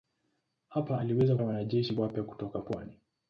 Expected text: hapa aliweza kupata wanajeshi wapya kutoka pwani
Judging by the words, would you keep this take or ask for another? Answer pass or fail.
fail